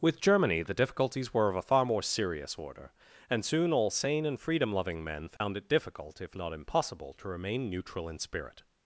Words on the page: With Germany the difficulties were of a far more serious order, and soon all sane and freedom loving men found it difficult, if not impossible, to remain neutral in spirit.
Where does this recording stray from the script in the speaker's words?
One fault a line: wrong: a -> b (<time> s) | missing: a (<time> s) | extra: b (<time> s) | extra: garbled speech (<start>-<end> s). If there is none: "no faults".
no faults